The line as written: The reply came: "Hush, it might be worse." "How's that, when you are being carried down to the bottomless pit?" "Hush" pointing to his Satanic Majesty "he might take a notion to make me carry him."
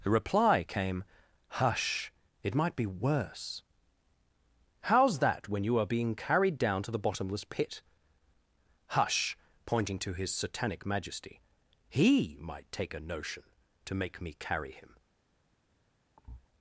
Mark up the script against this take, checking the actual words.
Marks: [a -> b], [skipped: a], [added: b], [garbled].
The reply came: "Hush, it might be worse." "How's that, when you are being carried down to the bottomless pit?" "Hush" pointing to his Satanic Majesty "he might take a notion to make me carry him."